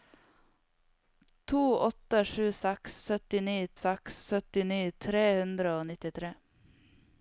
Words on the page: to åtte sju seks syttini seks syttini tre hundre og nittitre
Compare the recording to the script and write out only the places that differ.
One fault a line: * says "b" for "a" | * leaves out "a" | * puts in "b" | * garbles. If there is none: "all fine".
all fine